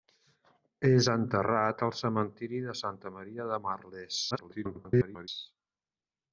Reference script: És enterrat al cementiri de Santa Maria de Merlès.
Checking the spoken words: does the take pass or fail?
fail